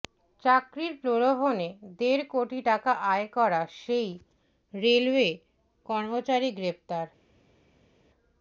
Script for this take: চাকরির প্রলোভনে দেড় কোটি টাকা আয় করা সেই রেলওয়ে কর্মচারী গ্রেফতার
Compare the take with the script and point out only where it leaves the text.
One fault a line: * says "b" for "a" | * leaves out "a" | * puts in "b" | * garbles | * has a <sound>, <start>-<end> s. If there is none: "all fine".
all fine